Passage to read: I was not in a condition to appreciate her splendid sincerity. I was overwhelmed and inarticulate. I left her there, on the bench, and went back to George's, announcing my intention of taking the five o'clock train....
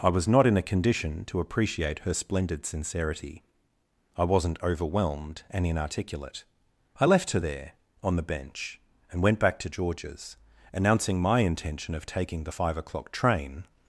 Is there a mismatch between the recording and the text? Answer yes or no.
yes